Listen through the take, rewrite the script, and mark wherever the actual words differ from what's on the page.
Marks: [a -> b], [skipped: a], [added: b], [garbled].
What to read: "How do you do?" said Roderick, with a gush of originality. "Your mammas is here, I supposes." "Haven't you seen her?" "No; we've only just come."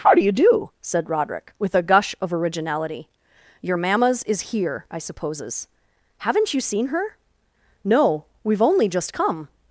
"How do you do?" said Roderick, with a gush of originality. "Your mammas is here, I supposes." "Haven't you seen her?" "No; we've only just come."